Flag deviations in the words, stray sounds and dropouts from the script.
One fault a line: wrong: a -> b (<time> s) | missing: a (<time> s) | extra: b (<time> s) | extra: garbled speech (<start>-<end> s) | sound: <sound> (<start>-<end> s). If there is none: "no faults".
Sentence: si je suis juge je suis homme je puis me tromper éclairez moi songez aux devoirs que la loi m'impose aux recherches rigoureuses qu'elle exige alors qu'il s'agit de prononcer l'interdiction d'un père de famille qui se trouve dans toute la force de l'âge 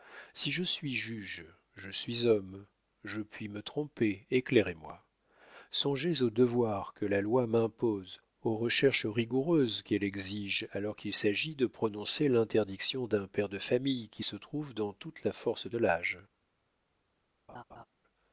sound: laugh (17.5-17.9 s)